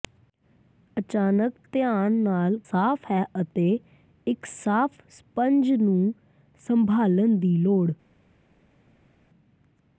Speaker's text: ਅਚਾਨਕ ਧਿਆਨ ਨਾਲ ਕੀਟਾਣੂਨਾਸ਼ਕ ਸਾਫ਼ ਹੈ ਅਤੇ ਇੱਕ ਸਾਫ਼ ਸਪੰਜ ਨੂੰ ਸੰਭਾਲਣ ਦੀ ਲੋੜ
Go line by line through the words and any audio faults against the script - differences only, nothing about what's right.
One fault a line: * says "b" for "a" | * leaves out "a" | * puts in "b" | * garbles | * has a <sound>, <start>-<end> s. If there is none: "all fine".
* leaves out "ਕੀਟਾਣੂਨਾਸ਼ਕ"